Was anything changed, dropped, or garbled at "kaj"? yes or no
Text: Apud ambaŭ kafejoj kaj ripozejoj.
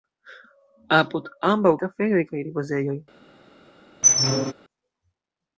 no